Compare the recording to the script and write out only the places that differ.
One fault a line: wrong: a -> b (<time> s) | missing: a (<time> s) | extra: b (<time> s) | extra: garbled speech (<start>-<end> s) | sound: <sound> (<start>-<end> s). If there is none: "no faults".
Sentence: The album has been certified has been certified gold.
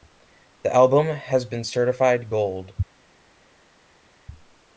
missing: has been certified (2.3 s)